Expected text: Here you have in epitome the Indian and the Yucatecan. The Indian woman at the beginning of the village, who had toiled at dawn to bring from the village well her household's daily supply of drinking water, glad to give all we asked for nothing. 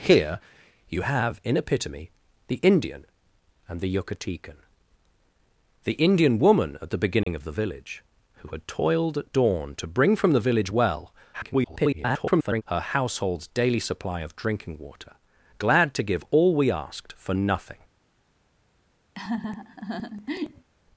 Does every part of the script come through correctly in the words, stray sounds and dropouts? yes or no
no